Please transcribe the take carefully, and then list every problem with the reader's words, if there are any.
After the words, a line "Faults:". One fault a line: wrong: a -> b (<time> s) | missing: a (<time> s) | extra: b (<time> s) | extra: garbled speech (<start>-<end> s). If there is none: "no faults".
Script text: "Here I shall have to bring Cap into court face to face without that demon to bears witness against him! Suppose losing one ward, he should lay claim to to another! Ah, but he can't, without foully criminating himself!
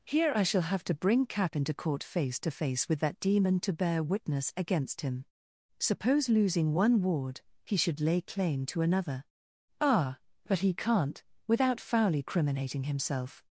"Here I shall have to bring Cap into court face to face with that demon to bear witness against him! Suppose losing one ward, he should lay claim to another! Ah, but he can't, without foully criminating himself!
Faults:
wrong: without -> with (2.9 s)
wrong: bears -> bear (3.7 s)
missing: to (8.8 s)